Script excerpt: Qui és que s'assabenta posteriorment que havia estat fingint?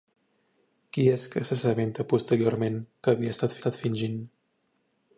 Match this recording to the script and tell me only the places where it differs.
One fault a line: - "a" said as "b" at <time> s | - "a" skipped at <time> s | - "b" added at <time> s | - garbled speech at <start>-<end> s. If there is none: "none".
- "estat" added at 3.6 s